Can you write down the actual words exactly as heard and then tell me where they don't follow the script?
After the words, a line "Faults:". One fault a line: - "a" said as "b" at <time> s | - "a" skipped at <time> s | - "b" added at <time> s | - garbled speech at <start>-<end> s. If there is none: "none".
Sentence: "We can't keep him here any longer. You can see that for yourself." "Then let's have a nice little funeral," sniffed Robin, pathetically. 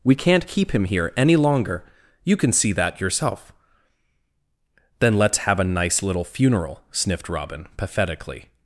"We can't keep him here any longer. You can see that yourself." "Then let's have a nice little funeral," sniffed Robin, pathetically.
Faults:
- "for" skipped at 3.0 s